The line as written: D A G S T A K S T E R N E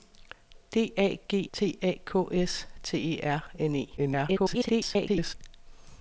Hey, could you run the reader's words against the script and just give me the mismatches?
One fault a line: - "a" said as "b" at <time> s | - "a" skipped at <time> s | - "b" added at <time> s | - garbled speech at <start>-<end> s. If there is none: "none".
- "S" skipped at 1.5 s
- garbled speech at 4.0-5.3 s